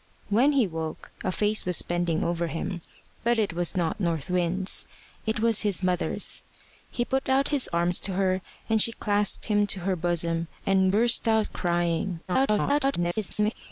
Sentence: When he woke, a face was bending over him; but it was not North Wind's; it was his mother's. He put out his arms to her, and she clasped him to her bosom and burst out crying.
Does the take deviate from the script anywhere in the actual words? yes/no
yes